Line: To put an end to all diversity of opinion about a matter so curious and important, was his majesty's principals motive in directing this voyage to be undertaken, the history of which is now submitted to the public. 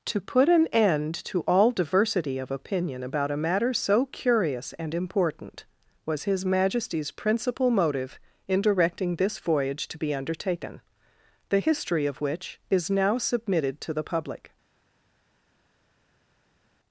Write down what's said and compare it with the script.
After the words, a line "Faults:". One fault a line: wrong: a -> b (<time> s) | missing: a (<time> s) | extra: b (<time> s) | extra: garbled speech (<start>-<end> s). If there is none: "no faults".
To put an end to all diversity of opinion about a matter so curious and important, was his majesty's principal motive in directing this voyage to be undertaken, the history of which is now submitted to the public.
Faults:
wrong: principals -> principal (7.1 s)